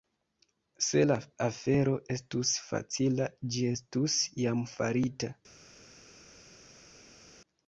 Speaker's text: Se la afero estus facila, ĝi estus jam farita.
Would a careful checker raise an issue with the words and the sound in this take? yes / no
no